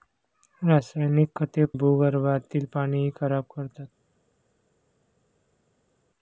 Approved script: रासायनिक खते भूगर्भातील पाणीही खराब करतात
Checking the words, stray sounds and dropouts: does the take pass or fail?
pass